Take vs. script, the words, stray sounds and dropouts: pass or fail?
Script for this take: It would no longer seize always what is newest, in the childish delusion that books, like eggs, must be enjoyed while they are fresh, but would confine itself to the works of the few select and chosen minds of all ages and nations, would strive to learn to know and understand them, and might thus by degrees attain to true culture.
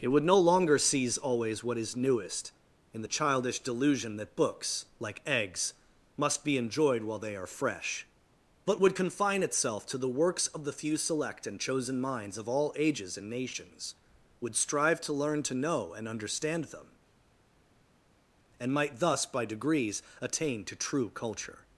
pass